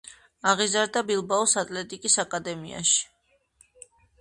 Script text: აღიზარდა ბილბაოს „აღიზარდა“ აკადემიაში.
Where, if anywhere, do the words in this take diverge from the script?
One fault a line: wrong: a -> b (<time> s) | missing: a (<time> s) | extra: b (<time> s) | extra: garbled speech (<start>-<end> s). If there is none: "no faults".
wrong: აღიზარდა -> ატლეტიკის (1.6 s)